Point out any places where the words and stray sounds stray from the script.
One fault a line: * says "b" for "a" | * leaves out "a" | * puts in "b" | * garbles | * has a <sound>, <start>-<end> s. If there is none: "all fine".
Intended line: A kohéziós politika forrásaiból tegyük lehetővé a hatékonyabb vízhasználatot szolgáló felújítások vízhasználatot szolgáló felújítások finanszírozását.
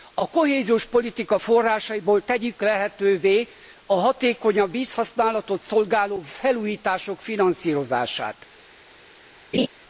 * leaves out "vízhasználatot szolgáló felújítások"
* has a laugh, 9.5-9.7 s